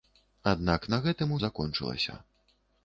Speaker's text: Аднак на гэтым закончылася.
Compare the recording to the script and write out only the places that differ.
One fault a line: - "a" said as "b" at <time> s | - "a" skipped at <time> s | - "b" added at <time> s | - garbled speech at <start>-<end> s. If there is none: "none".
none